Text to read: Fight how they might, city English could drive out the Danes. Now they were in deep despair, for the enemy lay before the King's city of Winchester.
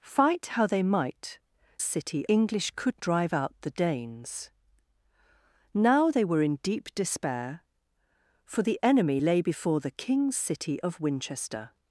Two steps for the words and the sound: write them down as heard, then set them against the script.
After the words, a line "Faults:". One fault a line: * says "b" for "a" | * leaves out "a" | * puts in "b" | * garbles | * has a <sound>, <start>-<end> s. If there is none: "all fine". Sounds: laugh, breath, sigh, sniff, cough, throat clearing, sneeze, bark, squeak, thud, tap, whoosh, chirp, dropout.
Fight how they might, city English could drive out the Danes. Now they were in deep despair, for the enemy lay before the King's city of Winchester.
Faults:
all fine